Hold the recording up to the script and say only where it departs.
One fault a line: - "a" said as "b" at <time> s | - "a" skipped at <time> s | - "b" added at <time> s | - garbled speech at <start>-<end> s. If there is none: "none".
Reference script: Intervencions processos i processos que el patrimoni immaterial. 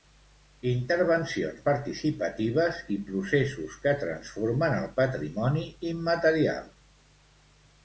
- "processos" said as "participatives" at 1.6 s
- "transformen" added at 4.1 s